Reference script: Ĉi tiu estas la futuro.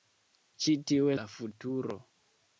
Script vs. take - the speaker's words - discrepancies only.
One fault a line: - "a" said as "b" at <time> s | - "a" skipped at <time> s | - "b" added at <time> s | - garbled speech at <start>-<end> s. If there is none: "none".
- "estas" skipped at 1.1 s